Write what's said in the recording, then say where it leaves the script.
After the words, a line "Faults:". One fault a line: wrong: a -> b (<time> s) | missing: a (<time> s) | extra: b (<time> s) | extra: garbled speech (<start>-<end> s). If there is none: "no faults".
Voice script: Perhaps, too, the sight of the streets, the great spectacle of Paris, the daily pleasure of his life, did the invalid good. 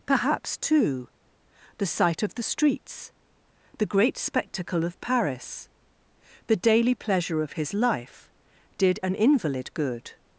Perhaps, too, the sight of the streets, the great spectacle of Paris, the daily pleasure of his life, did an invalid good.
Faults:
wrong: the -> an (9.0 s)